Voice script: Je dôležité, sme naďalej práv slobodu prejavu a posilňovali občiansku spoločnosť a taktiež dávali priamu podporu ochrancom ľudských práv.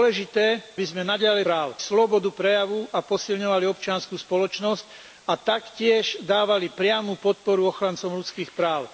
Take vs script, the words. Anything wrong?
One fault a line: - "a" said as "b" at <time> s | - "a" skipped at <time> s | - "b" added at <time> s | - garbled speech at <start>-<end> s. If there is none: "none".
none